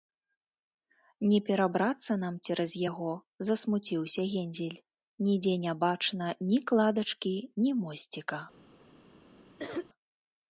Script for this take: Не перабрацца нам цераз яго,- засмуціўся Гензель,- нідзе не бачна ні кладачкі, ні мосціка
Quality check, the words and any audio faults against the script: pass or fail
fail